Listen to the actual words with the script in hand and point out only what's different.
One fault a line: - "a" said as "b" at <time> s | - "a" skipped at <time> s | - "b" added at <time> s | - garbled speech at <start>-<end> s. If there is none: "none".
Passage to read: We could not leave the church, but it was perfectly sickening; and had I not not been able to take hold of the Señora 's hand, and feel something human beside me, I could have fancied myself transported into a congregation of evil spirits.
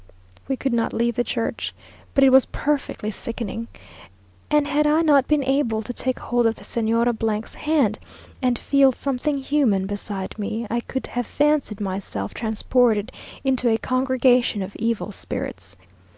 - "not" skipped at 5.3 s